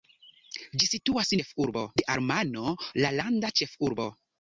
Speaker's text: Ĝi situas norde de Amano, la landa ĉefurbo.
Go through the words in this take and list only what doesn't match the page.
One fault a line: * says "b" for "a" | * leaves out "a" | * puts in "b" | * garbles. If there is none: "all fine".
* says "ĉefurbo" for "norde"